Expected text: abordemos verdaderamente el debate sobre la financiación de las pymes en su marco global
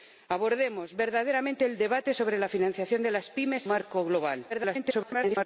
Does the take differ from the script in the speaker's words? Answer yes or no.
yes